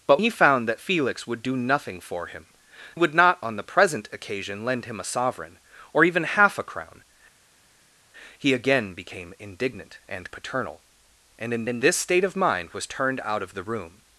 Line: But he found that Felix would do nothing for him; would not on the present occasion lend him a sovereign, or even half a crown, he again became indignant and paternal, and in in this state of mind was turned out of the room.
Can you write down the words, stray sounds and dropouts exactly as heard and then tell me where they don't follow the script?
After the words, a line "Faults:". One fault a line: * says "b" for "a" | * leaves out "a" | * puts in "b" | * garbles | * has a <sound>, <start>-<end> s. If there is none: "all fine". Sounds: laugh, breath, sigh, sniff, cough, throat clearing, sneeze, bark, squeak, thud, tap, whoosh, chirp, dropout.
But he found that Felix would do nothing for him; would not on the present occasion lend him a sovereign, or even half a crown, he again became indignant and paternal, and in in this state of mind was turned out of the room.
Faults:
all fine